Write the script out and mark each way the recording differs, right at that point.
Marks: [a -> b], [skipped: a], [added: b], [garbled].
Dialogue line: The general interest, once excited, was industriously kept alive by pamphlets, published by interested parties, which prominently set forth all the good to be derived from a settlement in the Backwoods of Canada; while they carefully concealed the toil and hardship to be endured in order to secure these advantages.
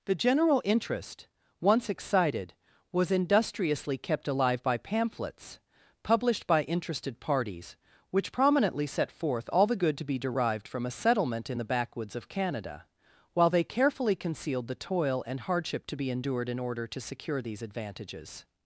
The general interest, once excited, was industriously kept alive by pamphlets, published by interested parties, which prominently set forth all the good to be derived from a settlement in the Backwoods of Canada; while they carefully concealed the toil and hardship to be endured in order to secure these advantages.